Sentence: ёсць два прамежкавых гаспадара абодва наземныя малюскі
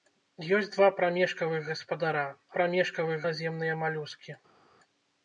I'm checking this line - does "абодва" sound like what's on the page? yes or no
no